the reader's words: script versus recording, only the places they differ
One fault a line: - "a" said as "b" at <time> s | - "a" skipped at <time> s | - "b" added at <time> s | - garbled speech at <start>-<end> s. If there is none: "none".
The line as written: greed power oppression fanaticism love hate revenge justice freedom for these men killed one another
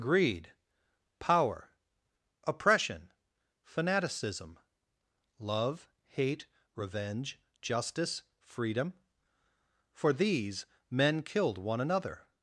none